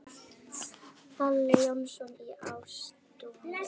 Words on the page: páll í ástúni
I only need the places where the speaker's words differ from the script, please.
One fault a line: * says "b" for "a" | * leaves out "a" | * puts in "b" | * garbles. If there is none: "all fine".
* puts in "jónsson"